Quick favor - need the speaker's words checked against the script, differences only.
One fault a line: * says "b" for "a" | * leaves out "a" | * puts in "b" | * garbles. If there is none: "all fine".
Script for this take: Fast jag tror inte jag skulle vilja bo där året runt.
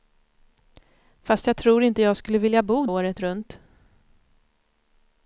* leaves out "där"